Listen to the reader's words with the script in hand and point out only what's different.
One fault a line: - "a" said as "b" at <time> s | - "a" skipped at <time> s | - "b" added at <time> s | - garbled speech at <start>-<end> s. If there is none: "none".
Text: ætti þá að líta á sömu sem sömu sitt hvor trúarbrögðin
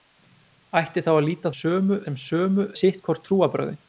none